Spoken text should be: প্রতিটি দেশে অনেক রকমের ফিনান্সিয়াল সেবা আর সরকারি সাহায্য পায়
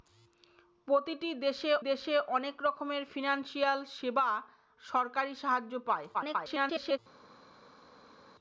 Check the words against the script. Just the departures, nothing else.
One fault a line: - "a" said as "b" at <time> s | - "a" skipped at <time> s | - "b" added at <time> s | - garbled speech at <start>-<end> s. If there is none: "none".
- "দেশে" added at 1.8 s
- "আর" skipped at 4.3 s
- garbled speech at 6.1-7.0 s